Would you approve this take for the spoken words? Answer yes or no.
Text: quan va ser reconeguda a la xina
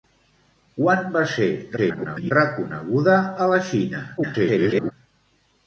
no